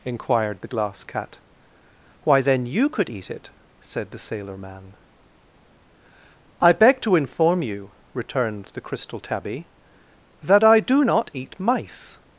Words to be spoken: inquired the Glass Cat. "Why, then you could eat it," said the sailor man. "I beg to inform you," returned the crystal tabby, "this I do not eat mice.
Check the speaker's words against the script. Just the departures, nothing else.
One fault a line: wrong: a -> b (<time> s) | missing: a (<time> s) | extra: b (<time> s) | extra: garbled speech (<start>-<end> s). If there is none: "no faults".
wrong: this -> that (10.4 s)